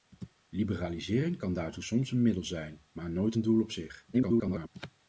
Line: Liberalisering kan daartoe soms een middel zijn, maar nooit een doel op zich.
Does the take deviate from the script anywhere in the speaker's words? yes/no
yes